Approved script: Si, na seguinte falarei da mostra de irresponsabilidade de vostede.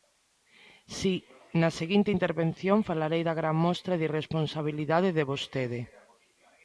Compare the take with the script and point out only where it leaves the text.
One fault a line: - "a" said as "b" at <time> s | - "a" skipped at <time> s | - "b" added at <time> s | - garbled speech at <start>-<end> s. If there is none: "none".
- "intervención" added at 2.2 s
- "gran" added at 3.4 s